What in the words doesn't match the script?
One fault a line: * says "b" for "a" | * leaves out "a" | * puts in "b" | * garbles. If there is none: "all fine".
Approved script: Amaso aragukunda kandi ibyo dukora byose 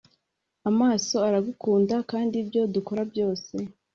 all fine